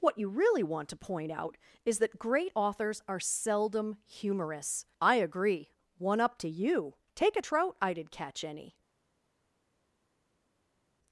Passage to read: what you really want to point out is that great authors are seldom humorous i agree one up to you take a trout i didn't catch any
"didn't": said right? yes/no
no